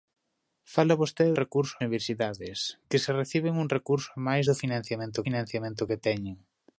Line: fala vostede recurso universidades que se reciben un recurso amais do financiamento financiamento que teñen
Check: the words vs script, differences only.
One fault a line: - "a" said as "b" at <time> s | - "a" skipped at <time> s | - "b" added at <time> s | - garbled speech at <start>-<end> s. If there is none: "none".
none